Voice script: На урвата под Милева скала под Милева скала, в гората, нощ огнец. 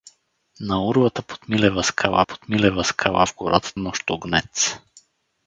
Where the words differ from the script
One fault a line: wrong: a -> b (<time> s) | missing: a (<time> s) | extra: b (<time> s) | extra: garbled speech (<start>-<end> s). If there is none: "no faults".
no faults